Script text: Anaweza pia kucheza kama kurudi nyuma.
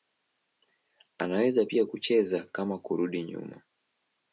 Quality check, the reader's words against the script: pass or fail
pass